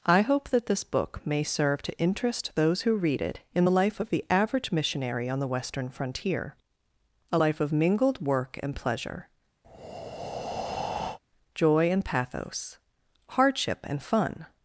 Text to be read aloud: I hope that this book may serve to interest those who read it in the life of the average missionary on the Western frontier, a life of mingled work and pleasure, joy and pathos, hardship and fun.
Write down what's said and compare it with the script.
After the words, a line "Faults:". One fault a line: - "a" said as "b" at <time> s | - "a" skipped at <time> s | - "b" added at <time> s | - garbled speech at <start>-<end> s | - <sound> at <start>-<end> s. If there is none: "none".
I hope that this book may serve to interest those who read it in the life of the average missionary on the Western frontier, a life of mingled work and pleasure, joy and pathos, hardship and fun.
Faults:
- breath at 9.6-11.2 s